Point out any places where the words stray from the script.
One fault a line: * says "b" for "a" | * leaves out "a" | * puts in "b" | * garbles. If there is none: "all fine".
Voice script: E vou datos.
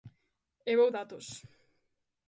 all fine